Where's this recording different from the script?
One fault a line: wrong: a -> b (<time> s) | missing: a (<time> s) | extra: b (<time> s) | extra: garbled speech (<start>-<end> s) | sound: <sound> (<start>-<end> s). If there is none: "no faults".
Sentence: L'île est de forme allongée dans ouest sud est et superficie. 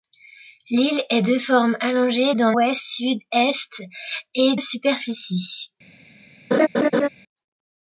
sound: laugh (6.5-7.1 s)